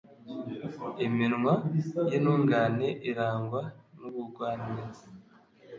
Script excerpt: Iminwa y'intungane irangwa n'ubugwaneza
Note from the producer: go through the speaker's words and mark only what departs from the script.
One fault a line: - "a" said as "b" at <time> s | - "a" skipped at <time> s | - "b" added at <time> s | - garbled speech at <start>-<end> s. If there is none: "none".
none